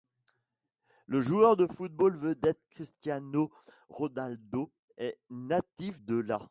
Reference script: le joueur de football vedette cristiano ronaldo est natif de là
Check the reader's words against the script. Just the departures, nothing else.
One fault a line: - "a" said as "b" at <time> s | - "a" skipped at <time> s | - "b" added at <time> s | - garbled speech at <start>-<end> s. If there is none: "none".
none